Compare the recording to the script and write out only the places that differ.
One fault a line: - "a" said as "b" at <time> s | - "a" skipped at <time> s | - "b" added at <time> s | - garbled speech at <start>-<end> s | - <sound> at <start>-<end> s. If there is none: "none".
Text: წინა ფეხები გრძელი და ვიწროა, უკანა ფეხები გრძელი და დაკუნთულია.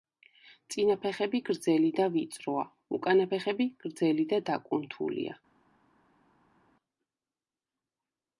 none